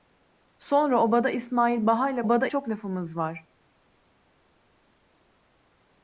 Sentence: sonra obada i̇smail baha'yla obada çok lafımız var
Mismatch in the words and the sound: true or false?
false